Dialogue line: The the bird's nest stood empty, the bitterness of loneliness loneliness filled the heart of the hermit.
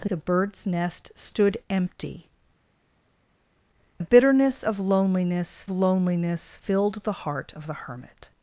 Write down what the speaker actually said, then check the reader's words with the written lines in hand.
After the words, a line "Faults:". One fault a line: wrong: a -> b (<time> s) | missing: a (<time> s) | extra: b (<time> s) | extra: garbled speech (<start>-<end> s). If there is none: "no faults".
The the bird's nest stood empty, the bitterness of loneliness loneliness filled the heart of the hermit.
Faults:
no faults